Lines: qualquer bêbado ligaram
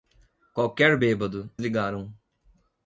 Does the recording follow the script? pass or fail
pass